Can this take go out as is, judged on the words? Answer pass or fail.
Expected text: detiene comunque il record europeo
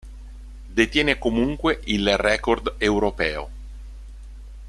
pass